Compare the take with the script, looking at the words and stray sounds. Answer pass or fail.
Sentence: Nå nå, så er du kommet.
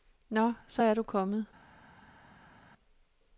fail